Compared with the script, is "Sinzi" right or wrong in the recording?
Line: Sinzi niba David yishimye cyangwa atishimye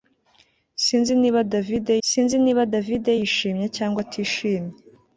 right